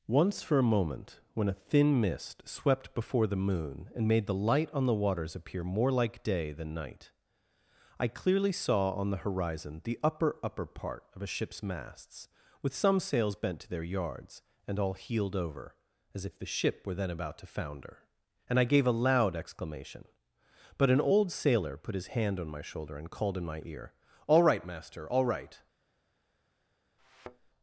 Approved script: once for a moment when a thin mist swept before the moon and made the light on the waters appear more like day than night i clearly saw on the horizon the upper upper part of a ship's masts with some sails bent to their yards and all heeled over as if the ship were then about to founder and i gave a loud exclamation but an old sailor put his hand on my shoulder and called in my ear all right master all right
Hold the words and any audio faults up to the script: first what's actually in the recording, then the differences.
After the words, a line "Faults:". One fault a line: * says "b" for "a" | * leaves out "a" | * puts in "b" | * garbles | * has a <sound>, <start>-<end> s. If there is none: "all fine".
once for a moment when a thin mist swept before the moon and made the light on the waters appear more like day than night i clearly saw on the horizon the upper upper part of a ship's masts with some sails bent to their yards and all heeled over as if the ship were then about to founder and i gave a loud exclamation but an old sailor put his hand on my shoulder and called in my ear all right master all right
Faults:
* has a thud, 27.0-27.5 s